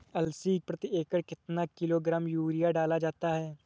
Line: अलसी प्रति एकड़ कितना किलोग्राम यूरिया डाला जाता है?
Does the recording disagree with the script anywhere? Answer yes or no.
no